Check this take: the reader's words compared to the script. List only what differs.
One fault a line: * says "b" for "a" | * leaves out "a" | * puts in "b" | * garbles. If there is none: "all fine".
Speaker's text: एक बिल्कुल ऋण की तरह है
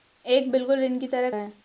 all fine